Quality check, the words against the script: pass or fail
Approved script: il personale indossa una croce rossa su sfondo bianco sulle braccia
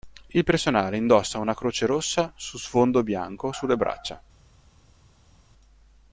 pass